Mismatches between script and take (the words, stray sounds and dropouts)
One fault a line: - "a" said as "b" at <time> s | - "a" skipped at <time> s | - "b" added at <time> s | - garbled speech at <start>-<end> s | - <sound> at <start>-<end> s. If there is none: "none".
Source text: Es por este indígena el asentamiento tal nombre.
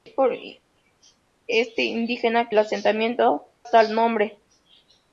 none